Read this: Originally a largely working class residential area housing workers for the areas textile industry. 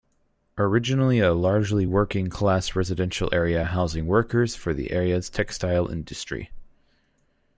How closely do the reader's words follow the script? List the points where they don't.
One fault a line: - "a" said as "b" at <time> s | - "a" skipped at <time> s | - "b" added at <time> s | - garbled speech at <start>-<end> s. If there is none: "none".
none